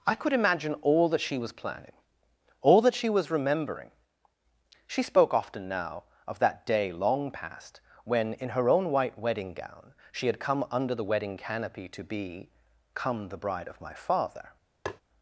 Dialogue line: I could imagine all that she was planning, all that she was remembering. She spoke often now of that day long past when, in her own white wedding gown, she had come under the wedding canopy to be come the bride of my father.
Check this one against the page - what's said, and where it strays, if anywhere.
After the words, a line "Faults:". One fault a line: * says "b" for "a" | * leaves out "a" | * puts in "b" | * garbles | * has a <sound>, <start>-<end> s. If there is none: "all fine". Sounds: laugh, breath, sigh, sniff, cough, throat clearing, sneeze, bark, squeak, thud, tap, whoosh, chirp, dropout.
I could imagine all that she was planning, all that she was remembering. She spoke often now of that day long past when, in her own white wedding gown, she had come under the wedding canopy to be come the bride of my father.
Faults:
* has a tap, 14.9-15.0 s